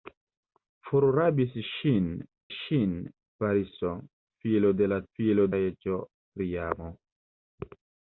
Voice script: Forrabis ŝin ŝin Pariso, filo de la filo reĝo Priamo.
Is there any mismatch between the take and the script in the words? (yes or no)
no